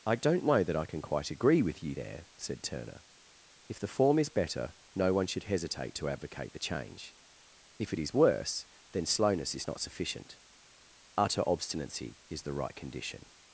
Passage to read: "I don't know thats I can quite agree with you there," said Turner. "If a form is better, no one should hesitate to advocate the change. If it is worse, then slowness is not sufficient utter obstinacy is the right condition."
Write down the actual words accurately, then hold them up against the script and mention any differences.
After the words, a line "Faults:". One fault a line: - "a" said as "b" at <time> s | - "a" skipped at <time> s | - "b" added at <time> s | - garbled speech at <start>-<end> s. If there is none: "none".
"I don't know that I can quite agree with you there," said Turner. "If the form is better, no one should hesitate to advocate the change. If it is worse, then slowness is not sufficient utter obstinacy is the right condition."
Faults:
- "thats" said as "that" at 0.6 s
- "a" said as "the" at 3.8 s